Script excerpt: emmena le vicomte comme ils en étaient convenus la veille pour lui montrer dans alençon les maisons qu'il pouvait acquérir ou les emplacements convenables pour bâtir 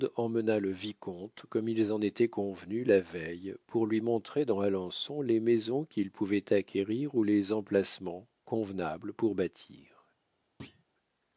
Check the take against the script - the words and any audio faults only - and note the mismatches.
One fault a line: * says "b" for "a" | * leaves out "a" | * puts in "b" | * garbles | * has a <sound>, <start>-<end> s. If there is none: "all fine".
* has a thud, 10.6-10.8 s